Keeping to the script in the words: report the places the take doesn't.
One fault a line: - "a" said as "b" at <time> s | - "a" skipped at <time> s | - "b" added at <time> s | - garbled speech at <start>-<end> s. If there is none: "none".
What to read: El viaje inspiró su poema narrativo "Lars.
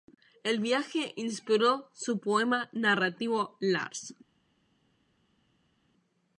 none